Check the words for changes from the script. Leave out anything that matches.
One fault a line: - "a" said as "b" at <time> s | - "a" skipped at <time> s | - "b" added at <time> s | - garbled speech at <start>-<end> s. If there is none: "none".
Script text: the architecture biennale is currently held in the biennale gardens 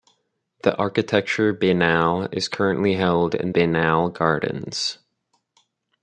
- "the" skipped at 3.5 s